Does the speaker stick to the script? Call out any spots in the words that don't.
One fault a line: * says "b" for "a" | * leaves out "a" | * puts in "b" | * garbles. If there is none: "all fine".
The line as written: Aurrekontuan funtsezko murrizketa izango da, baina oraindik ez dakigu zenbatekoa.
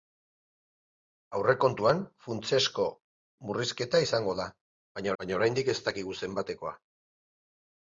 * puts in "baina"